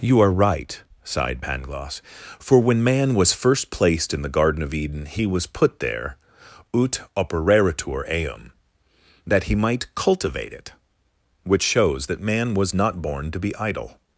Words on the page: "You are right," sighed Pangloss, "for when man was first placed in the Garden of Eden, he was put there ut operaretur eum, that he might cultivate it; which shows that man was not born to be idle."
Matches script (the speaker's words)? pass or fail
pass